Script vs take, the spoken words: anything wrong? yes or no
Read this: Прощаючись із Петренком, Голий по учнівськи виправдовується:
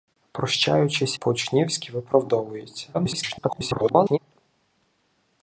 yes